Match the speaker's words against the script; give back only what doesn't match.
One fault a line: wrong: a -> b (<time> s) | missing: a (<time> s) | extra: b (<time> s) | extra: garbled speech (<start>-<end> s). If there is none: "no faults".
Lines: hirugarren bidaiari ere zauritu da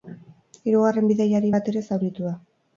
extra: bat (1.6 s)